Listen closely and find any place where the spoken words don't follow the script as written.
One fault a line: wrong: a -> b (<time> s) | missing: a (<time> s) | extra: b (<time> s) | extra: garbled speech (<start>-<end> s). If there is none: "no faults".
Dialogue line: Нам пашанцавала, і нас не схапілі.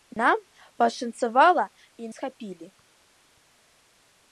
missing: нас не (2.1 s)